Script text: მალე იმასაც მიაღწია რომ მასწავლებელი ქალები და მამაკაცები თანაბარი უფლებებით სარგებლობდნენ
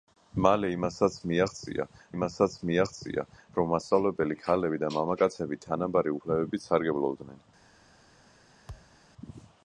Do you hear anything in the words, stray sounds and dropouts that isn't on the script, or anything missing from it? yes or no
yes